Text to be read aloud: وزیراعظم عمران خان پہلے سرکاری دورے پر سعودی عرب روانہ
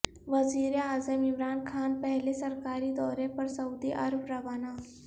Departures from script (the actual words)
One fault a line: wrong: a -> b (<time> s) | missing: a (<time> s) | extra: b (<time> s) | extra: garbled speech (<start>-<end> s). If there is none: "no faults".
no faults